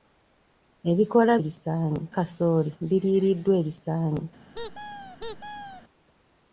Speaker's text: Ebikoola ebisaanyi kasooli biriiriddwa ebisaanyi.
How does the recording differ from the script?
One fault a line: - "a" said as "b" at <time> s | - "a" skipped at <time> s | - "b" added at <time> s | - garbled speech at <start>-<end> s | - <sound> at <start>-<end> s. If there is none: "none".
- squeak at 4.5-5.8 s